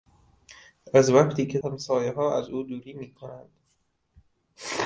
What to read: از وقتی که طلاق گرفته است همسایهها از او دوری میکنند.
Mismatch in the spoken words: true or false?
true